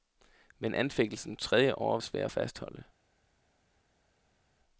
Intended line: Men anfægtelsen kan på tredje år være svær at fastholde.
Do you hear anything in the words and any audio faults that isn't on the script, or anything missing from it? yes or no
yes